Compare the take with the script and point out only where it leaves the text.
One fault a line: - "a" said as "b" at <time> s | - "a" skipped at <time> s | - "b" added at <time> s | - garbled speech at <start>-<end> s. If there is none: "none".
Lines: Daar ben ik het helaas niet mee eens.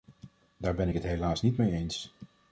none